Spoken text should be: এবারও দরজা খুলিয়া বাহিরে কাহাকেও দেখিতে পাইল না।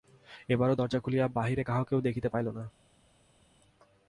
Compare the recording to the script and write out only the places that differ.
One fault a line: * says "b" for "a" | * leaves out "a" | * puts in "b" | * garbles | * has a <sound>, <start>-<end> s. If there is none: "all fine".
all fine